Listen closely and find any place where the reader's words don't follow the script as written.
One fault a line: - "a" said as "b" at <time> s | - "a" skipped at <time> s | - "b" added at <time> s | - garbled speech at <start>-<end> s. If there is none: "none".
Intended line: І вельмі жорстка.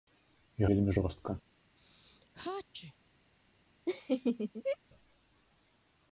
none